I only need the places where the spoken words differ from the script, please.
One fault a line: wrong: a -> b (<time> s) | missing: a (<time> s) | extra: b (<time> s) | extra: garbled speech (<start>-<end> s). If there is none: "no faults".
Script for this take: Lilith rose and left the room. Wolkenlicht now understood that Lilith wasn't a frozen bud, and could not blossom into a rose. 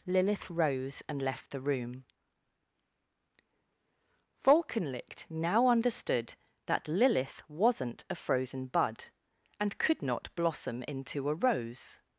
no faults